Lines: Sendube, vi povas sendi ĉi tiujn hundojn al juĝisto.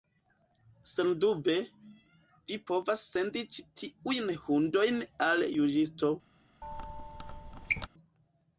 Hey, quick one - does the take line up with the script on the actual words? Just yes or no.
yes